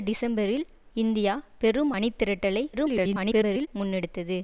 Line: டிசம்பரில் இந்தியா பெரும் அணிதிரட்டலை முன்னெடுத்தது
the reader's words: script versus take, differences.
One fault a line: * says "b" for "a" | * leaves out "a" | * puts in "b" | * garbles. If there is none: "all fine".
* garbles